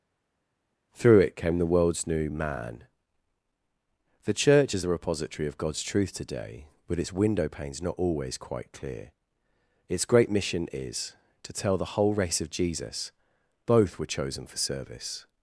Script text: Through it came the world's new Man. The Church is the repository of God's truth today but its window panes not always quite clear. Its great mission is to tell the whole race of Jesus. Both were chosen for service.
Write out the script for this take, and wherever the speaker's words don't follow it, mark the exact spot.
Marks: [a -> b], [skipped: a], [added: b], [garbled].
Through it came the world's new Man. The Church is the repository of God's truth today but its window panes not always quite clear. Its great mission is to tell the whole race of Jesus. Both were chosen for service.